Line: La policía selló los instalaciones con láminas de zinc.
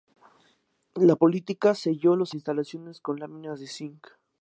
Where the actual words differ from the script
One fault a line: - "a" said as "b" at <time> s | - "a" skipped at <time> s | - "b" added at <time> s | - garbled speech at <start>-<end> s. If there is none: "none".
none